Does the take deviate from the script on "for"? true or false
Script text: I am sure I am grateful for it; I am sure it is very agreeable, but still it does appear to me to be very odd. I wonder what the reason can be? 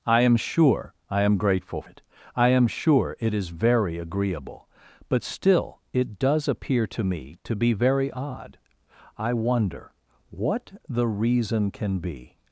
true